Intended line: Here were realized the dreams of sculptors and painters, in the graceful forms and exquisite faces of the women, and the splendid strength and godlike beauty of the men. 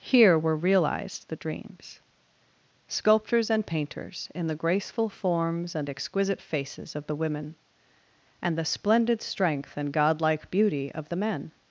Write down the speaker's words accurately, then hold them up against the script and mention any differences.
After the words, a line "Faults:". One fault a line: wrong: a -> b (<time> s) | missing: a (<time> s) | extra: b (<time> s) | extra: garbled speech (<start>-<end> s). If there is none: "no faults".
Here were realized the dreams sculptors and painters, in the graceful forms and exquisite faces of the women, and the splendid strength and godlike beauty of the men.
Faults:
missing: of (2.0 s)